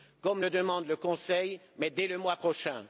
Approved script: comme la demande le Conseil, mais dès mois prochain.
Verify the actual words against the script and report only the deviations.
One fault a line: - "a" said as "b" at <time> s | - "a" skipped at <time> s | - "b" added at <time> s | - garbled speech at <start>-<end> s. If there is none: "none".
- "la" said as "le" at 0.4 s
- "le" added at 2.1 s